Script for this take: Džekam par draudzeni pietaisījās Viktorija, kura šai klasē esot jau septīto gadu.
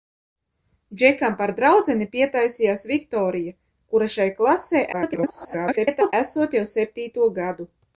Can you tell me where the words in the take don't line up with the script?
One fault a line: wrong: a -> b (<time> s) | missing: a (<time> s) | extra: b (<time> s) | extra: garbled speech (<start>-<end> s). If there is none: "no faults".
extra: garbled speech (4.9-6.1 s)